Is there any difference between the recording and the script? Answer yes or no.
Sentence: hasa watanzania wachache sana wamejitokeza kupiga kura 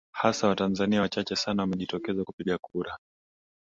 no